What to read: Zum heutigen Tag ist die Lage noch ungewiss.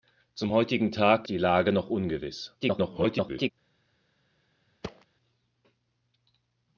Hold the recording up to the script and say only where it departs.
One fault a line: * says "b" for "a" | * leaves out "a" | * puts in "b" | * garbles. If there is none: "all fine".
* leaves out "ist"
* garbles